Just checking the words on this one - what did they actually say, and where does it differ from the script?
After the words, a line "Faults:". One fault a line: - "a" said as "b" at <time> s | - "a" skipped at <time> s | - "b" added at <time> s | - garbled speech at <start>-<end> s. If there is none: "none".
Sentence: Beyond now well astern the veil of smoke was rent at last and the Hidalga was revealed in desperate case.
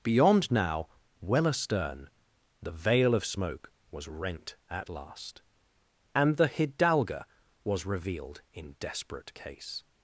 Beyond now well astern the veil of smoke was rent at last and the Hidalga was revealed in desperate case.
Faults:
none